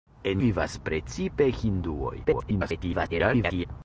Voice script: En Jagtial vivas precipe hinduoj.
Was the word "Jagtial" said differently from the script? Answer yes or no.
yes